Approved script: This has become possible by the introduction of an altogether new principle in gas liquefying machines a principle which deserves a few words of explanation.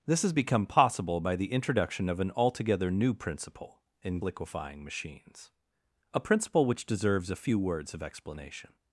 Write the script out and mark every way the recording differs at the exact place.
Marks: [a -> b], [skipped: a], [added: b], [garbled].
This has become possible by the introduction of an altogether new principle in [skipped: gas] liquefying machines a principle which deserves a few words of explanation.